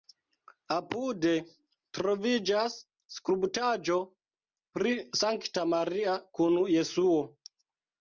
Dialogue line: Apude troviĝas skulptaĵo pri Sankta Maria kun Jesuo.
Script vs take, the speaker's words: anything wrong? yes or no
no